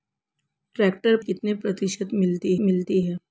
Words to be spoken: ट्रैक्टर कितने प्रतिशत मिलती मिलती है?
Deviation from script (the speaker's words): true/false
false